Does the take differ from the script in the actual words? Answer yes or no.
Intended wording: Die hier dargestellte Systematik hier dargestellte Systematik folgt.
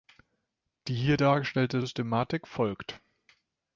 yes